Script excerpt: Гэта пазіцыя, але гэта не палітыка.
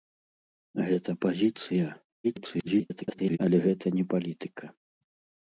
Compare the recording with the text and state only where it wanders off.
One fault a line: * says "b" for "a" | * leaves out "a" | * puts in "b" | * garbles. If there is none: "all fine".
* garbles